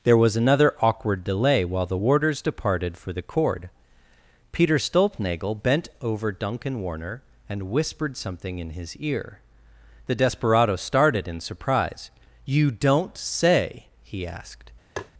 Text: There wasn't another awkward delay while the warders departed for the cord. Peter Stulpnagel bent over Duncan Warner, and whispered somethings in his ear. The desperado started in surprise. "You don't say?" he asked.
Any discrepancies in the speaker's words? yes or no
yes